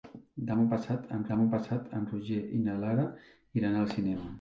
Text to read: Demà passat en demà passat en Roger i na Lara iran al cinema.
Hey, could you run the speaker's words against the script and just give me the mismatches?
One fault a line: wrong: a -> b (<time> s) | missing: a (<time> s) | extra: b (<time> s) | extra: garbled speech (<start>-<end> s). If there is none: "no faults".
no faults